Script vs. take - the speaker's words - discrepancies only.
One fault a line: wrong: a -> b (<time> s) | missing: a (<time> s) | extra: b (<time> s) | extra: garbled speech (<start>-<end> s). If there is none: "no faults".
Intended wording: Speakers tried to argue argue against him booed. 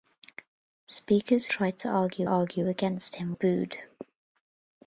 no faults